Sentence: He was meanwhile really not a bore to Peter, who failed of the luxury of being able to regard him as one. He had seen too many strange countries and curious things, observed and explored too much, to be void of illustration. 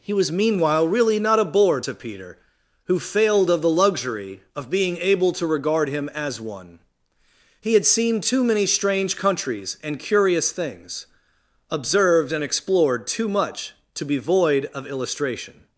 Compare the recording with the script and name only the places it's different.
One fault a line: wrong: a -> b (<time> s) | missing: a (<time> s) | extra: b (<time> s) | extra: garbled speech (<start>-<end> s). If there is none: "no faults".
no faults